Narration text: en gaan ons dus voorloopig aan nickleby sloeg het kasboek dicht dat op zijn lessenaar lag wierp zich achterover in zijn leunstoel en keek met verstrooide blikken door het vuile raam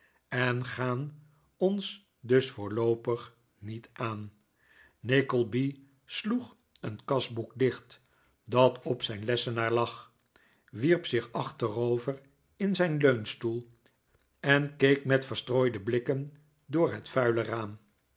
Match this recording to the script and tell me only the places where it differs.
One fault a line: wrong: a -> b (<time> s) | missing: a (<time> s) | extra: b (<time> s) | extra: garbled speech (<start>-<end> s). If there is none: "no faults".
extra: niet (3.6 s)
wrong: het -> een (6.8 s)